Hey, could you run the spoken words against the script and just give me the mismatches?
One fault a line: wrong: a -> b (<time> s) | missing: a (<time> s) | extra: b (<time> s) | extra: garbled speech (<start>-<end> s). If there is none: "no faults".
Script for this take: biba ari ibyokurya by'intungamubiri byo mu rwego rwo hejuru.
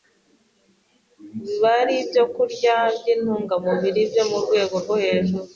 no faults